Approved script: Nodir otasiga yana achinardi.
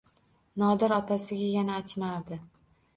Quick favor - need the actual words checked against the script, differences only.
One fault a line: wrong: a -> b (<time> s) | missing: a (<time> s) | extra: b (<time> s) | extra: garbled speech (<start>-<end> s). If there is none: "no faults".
no faults